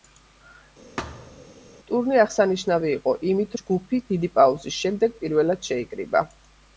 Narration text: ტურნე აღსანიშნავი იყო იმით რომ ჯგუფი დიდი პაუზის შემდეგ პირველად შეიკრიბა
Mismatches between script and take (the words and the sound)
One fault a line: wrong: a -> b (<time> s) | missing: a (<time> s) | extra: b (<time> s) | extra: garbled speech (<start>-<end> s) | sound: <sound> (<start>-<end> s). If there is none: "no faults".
sound: thud (1.0-1.5 s)
missing: რომ (3.6 s)